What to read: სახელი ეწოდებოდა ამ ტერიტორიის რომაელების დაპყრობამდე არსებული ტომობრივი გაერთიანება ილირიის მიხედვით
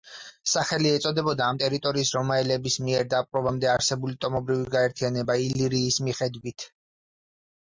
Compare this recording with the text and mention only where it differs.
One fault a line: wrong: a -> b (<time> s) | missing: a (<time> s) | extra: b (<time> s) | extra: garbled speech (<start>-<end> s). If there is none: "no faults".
extra: მიერ (2.9 s)